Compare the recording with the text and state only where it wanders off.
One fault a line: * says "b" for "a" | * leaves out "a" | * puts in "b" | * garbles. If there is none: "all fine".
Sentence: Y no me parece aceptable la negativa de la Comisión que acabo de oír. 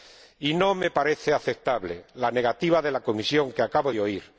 all fine